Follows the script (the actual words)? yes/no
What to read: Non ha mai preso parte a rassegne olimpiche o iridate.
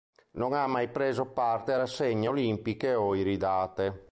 yes